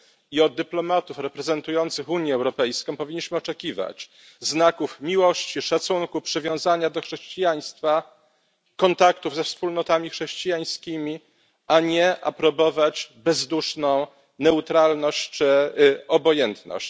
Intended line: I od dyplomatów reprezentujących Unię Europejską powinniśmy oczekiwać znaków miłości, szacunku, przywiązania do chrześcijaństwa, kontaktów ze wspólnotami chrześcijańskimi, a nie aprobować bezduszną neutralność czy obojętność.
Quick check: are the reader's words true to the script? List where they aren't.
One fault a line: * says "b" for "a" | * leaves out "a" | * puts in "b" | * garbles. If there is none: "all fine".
all fine